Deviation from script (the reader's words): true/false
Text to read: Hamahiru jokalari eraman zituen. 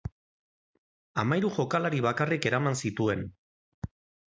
true